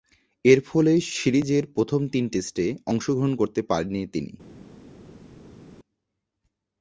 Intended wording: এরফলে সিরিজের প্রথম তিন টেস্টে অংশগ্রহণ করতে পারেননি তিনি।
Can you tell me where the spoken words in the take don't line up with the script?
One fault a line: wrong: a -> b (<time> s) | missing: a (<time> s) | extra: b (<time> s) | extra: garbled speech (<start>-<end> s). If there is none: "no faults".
no faults